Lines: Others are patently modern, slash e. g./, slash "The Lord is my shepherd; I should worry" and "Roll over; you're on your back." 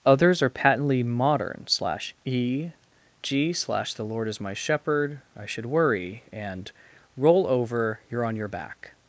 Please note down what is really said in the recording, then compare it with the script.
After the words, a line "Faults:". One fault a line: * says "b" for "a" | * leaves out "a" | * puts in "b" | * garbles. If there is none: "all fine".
Others are patently modern, slash e. g./, slash "The Lord is my shepherd; I should worry" and "Roll over; you're on your back."
Faults:
all fine